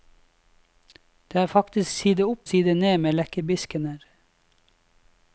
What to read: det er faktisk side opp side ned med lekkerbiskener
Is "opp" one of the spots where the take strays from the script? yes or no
no